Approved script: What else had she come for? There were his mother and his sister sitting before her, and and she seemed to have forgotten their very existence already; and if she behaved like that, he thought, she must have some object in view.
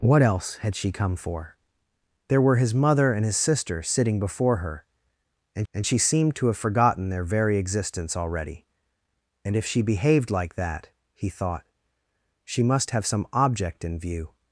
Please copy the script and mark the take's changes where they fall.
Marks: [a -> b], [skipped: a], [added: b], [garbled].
What else had she come for? There were his mother and his sister sitting before her, and and she seemed to have forgotten their very existence already; and if she behaved like that, he thought, she must have some object in view.